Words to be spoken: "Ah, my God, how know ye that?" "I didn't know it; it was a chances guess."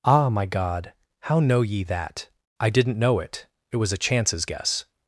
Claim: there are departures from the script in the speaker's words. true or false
false